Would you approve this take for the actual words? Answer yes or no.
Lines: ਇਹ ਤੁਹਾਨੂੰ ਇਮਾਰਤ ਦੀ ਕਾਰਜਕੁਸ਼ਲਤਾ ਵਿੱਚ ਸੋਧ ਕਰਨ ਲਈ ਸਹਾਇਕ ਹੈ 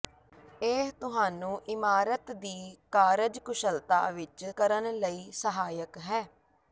no